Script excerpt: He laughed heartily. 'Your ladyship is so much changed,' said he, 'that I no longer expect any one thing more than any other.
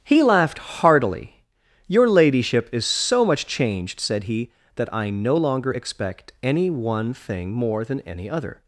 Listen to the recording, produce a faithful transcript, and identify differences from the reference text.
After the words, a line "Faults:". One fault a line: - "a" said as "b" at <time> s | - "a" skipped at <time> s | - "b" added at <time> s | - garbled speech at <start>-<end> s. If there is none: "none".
He laughed heartily. 'Your ladyship is so much changed,' said he, 'that I no longer expect any one thing more than any other.
Faults:
none